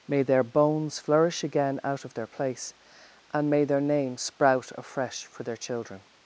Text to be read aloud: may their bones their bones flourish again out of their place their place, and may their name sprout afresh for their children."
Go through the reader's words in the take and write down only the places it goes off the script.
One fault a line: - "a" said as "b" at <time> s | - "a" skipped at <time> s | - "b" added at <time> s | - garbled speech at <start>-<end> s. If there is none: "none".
- "their bones" skipped at 1.0 s
- "their place" skipped at 2.7 s